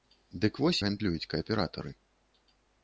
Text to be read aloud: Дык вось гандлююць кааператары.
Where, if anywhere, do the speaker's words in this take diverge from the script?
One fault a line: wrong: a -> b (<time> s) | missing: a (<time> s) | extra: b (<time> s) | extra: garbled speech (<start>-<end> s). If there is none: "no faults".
no faults